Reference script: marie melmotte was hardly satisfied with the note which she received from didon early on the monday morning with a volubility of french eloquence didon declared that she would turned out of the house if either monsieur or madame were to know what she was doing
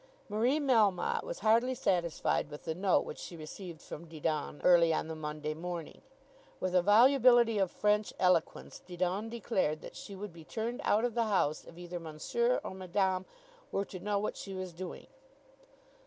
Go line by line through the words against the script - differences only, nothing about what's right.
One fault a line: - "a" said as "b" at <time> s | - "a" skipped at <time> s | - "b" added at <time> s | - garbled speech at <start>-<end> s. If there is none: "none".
- "be" added at 10.3 s